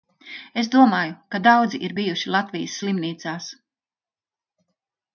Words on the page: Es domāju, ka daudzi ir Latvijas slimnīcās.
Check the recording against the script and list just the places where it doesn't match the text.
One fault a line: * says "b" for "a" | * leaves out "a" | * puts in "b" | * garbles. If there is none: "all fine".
* puts in "bijuši"